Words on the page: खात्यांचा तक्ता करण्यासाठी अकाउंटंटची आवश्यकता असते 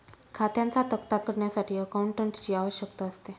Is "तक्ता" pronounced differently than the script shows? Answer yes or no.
no